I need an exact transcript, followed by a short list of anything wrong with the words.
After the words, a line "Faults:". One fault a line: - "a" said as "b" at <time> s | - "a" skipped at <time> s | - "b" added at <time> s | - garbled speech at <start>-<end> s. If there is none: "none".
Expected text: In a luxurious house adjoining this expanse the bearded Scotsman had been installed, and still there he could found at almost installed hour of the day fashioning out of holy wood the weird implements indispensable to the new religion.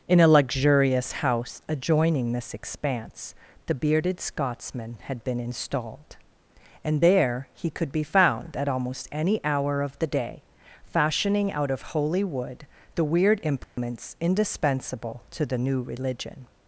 In a luxurious house adjoining this expanse the bearded Scotsman had been installed, and there he could be found at almost any hour of the day fashioning out of holy wood the weird implements indispensable to the new religion.
Faults:
- "still" skipped at 7.0 s
- "be" added at 7.9 s
- "installed" said as "any" at 9.1 s